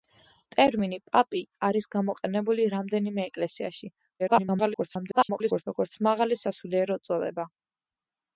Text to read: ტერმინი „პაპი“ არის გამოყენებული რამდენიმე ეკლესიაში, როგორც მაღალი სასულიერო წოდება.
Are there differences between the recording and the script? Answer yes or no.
yes